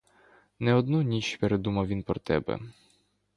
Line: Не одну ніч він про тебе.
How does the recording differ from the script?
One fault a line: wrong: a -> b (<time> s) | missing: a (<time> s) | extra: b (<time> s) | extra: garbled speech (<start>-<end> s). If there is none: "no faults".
extra: передумав (1.3 s)